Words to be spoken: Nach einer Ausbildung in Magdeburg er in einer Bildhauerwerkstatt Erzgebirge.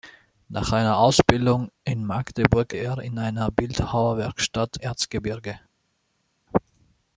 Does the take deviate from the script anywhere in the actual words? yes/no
no